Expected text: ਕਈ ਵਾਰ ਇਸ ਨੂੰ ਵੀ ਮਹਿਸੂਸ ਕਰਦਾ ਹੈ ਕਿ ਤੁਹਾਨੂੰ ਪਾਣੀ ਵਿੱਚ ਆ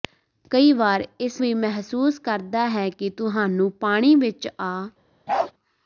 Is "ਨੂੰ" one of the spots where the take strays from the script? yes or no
yes